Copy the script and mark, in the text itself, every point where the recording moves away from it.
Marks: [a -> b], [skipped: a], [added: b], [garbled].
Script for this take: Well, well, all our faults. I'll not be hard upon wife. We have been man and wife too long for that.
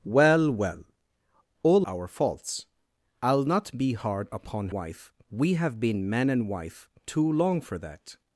Well, well, all our faults. I'll not be hard upon wife. We have been man and wife too long for that.